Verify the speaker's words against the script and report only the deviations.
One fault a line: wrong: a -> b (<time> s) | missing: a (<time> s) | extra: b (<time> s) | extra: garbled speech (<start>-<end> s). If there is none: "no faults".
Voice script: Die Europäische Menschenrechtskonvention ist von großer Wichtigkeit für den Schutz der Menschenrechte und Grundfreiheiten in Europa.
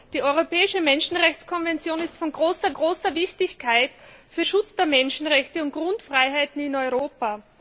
extra: großer (2.7 s)
missing: den (4.4 s)